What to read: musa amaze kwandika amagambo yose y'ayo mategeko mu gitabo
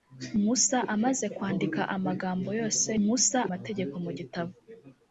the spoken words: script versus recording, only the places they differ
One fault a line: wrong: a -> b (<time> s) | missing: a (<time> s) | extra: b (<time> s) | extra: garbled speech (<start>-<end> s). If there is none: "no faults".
wrong: y'ayo -> musa (3.0 s)